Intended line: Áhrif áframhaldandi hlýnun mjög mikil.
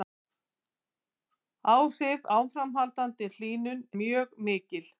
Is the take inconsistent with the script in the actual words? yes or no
no